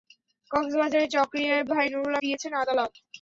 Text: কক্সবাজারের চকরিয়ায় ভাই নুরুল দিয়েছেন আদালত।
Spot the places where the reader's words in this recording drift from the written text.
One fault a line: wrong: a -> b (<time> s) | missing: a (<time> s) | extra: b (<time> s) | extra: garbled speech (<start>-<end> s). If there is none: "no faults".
no faults